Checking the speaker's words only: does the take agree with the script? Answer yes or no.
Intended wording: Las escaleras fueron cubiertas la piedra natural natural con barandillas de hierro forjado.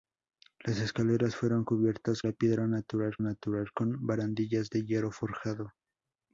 yes